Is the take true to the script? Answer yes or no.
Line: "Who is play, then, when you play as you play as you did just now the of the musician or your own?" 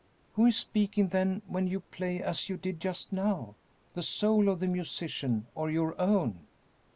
no